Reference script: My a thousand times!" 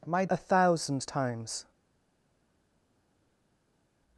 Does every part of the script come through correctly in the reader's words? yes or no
yes